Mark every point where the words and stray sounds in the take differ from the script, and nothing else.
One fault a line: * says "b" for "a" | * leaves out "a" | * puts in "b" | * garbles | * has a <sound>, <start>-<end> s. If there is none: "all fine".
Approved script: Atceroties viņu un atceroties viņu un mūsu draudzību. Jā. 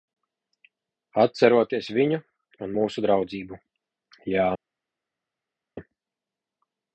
* leaves out "atceroties viņu un"